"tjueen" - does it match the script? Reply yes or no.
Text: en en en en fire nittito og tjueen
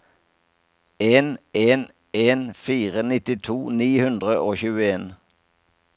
yes